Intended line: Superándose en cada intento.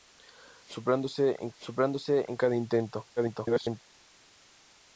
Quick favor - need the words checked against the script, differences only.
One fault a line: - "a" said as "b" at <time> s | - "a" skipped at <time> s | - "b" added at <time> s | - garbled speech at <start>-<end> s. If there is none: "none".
- "superándose en" added at 1.5 s
- garbled speech at 3.2-3.8 s